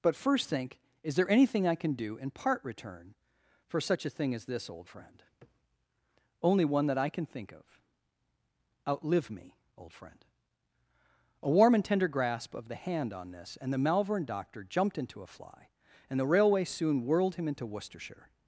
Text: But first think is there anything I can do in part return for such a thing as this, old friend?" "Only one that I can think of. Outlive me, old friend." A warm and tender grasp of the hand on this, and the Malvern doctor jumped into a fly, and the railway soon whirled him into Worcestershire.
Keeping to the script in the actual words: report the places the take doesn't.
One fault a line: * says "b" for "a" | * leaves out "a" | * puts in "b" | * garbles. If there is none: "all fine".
all fine